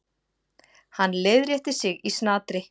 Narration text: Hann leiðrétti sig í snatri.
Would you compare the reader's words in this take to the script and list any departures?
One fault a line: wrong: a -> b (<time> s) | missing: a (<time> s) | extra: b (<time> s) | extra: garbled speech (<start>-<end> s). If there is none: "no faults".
no faults